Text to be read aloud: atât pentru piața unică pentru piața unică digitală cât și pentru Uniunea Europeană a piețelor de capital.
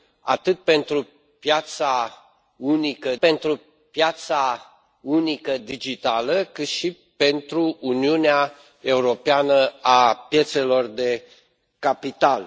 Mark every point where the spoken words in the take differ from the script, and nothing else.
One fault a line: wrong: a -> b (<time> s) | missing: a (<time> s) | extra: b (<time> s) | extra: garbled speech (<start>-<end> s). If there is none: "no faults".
no faults